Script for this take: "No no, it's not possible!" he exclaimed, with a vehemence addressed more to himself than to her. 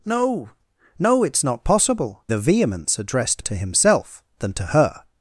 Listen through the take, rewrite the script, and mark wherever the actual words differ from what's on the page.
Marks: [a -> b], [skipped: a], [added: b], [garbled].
"No no, it's not possible!" [skipped: he exclaimed, with] a vehemence addressed [skipped: more] to himself than to her.